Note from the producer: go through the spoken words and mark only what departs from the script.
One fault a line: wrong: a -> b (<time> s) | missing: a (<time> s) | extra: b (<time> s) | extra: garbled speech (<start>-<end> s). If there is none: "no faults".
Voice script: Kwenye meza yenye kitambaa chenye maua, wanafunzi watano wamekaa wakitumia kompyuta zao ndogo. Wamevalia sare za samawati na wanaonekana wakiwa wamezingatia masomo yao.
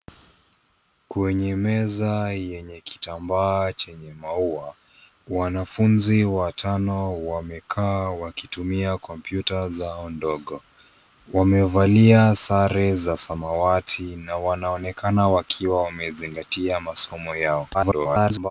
extra: garbled speech (17.7-18.5 s)